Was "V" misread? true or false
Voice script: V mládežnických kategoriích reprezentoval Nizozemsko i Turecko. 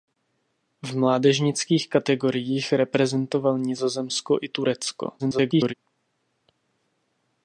false